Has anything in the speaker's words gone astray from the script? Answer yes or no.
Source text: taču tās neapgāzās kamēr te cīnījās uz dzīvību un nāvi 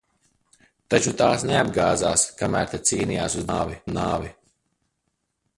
yes